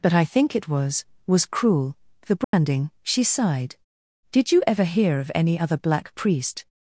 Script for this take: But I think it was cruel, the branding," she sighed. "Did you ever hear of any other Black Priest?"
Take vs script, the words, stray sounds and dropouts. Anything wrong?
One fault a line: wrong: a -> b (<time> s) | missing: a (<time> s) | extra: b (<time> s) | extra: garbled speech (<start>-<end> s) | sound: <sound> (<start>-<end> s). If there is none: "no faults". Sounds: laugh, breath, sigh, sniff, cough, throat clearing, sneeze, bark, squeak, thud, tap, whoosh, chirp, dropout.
extra: was (1.3 s)
sound: dropout (2.4-2.5 s)